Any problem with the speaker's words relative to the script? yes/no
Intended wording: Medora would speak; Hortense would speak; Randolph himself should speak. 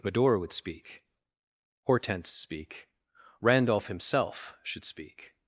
yes